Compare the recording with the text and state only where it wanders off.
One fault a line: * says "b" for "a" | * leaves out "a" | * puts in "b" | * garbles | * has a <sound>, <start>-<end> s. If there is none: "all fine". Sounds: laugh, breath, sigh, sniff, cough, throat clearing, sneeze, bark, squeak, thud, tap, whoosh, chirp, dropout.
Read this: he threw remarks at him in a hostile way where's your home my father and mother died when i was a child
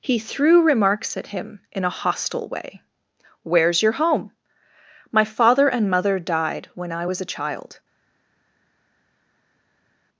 all fine